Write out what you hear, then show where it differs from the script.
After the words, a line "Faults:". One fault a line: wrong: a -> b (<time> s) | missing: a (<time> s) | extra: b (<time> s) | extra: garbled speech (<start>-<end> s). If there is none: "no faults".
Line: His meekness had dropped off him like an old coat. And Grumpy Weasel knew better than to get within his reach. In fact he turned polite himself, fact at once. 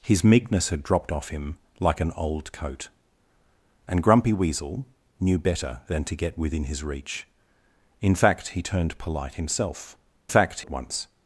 His meekness had dropped off him like an old coat. And Grumpy Weasel knew better than to get within his reach. In fact he turned polite himself, fact at once.
Faults:
no faults